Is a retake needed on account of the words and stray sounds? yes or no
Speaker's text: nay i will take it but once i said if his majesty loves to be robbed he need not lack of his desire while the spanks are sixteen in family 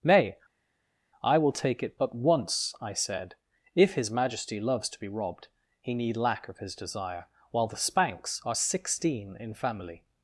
yes